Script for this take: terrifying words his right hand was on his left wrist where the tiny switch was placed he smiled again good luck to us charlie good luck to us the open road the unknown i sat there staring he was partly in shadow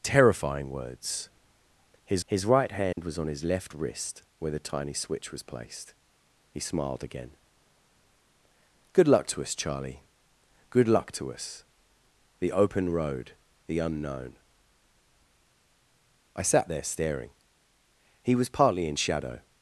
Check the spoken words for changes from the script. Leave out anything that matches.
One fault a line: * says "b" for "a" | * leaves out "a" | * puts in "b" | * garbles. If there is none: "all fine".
* puts in "his"